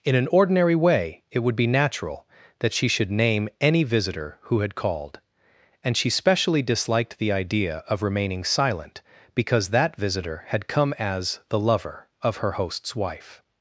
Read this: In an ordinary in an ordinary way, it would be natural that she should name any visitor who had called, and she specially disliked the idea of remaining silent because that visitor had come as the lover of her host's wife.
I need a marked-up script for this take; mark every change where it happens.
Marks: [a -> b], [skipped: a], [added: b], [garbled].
In an ordinary [skipped: in an ordinary] way, it would be natural that she should name any visitor who had called, and she specially disliked the idea of remaining silent because that visitor had come as the lover of her host's wife.